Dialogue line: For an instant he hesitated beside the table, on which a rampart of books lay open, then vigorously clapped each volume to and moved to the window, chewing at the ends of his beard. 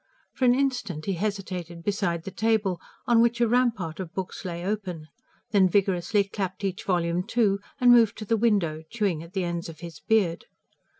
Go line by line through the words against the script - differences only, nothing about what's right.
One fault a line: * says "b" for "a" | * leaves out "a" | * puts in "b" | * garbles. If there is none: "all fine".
all fine